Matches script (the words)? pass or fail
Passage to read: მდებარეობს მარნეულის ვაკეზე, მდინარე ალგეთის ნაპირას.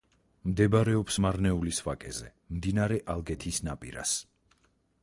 pass